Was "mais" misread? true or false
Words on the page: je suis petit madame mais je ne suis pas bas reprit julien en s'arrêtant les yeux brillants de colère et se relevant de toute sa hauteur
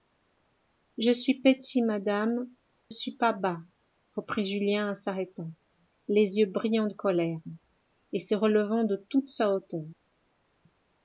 true